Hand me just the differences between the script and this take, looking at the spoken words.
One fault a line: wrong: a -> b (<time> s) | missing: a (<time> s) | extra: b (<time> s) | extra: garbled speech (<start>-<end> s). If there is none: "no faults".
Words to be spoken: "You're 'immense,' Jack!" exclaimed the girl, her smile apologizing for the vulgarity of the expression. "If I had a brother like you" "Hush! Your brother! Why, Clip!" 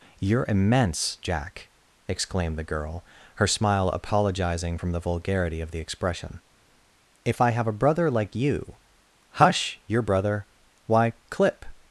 wrong: for -> from (4.7 s)
wrong: had -> have (7.5 s)